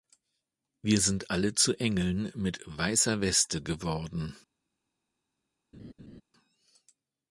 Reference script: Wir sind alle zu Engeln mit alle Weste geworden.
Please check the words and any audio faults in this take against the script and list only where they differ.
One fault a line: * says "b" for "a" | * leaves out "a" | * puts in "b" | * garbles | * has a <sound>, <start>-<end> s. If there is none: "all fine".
* says "weißer" for "alle"
* has a laugh, 5.7-6.2 s